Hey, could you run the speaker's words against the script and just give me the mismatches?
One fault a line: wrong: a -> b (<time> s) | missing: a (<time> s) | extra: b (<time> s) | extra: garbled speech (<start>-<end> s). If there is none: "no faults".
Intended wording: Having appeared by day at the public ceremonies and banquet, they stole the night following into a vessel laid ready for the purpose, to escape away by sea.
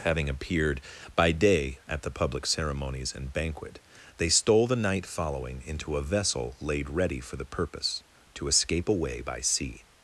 no faults